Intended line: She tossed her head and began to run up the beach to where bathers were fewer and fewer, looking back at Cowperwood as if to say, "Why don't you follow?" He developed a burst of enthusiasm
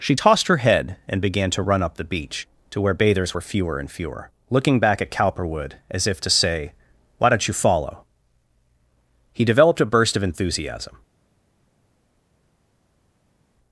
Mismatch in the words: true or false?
false